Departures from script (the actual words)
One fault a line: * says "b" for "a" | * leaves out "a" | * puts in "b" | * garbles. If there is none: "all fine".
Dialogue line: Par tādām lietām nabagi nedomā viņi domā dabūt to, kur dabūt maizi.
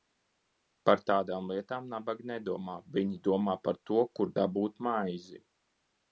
* says "par" for "dabūt"